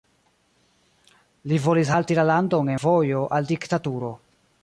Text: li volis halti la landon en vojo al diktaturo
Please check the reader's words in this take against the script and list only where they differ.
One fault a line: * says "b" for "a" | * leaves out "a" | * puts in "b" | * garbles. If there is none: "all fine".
* leaves out "en"